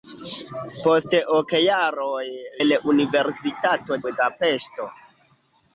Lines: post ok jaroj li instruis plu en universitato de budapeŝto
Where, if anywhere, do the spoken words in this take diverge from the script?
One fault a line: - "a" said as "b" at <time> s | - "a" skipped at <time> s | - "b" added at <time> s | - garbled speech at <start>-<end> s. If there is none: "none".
- "li instruis plu" skipped at 2.2 s
- "de" skipped at 4.0 s